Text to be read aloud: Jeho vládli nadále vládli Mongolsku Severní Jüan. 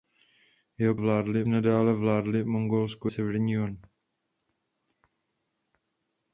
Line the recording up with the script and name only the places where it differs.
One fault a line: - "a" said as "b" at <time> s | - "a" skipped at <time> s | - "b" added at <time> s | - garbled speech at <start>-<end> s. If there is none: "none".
none